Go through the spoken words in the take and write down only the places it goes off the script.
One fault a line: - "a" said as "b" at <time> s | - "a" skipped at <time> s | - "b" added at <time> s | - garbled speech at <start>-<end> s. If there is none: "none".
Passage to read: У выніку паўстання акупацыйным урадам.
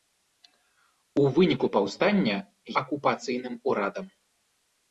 none